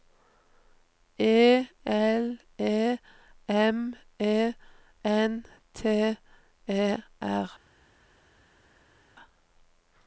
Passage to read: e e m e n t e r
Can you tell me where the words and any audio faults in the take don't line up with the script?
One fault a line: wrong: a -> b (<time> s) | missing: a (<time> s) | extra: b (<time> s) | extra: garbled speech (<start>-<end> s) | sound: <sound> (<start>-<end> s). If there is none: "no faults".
extra: l (1.9 s)